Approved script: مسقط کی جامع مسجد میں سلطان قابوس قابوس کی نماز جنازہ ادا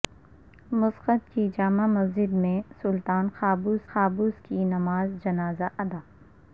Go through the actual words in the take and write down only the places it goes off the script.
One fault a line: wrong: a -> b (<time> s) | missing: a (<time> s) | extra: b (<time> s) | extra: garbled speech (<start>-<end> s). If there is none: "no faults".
no faults